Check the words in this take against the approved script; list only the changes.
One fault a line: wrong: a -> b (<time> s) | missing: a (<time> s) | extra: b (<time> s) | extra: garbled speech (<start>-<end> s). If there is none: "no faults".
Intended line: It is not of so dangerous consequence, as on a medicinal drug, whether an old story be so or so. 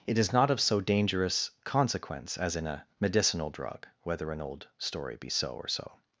wrong: on -> in (2.5 s)